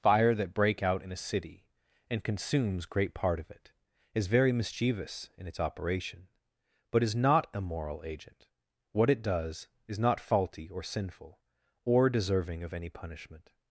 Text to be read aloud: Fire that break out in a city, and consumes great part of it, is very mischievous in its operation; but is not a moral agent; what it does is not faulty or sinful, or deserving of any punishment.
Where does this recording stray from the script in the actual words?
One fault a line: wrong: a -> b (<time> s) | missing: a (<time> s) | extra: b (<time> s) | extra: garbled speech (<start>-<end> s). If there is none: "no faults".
no faults